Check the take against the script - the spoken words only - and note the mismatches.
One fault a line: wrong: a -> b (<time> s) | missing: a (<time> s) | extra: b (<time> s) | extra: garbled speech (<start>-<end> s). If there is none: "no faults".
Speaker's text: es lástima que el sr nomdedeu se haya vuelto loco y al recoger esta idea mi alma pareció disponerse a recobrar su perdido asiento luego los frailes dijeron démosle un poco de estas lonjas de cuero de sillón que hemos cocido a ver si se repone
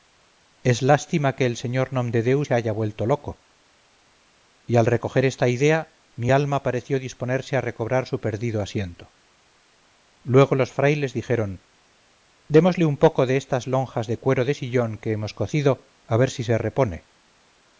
no faults